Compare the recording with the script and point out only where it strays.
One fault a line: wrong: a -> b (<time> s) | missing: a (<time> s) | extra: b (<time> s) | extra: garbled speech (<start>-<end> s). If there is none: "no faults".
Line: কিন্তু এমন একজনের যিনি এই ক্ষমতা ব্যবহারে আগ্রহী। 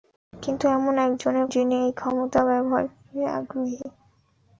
no faults